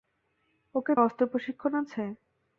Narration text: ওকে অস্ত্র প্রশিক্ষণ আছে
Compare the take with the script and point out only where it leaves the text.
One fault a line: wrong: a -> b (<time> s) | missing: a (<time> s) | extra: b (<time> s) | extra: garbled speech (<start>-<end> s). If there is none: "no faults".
no faults